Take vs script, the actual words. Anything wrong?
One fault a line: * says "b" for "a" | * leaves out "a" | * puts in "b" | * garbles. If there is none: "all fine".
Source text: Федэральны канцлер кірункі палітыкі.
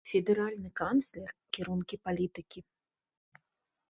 all fine